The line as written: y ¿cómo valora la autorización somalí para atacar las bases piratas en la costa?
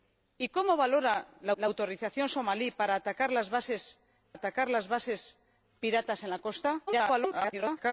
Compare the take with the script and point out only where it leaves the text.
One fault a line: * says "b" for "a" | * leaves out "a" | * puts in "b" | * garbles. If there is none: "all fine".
* puts in "la"
* puts in "atacar las bases"
* garbles